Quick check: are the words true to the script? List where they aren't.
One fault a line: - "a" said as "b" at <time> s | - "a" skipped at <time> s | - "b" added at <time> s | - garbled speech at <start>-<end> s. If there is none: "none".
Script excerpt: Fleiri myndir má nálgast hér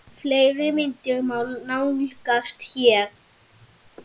none